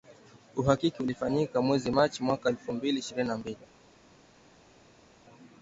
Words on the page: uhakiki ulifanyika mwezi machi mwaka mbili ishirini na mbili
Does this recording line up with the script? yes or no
no